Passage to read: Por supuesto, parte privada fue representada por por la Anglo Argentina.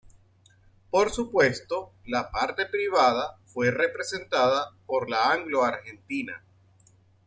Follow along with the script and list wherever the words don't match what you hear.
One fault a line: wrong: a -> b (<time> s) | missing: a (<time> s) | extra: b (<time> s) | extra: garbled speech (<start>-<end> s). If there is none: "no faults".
extra: la (2.1 s)
missing: por (5.1 s)